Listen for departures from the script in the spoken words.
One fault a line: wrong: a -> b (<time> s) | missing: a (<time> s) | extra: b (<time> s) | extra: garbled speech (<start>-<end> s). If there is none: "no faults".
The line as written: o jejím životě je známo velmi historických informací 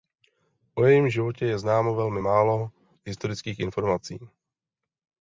extra: málo (2.2 s)